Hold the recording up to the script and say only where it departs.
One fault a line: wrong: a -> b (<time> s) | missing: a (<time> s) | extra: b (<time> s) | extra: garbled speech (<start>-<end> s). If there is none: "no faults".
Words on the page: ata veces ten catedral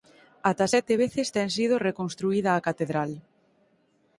extra: sete (0.7 s)
extra: sido reconstruída a (1.6 s)